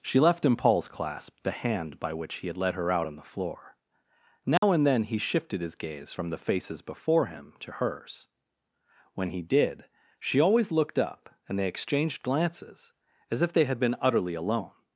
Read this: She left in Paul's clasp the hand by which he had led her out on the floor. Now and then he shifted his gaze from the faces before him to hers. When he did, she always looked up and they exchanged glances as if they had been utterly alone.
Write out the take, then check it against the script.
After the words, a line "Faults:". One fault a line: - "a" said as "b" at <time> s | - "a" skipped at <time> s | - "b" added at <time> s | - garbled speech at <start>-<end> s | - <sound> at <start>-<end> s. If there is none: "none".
She left in Paul's clasp the hand by which he had led her out on the floor. Now and then he shifted his gaze from the faces before him to hers. When he did, she always looked up and they exchanged glances as if they had been utterly alone.
Faults:
- dropout at 4.6-4.6 s